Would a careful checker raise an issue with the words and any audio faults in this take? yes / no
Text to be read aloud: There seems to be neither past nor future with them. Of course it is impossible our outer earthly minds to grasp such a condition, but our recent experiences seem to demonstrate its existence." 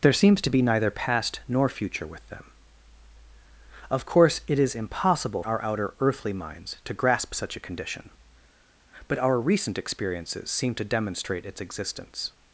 no